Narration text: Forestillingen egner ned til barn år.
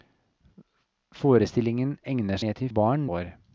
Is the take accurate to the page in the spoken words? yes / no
yes